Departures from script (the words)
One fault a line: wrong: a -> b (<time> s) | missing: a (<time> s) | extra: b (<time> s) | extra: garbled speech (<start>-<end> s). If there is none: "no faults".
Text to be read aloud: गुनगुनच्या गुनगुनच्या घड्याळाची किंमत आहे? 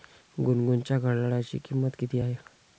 missing: गुनगुनच्या (1.0 s)
extra: किती (2.0 s)